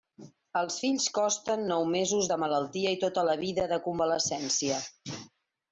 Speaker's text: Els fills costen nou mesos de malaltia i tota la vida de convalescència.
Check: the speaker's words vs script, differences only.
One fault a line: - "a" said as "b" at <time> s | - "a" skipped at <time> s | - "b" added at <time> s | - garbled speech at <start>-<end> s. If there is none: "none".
none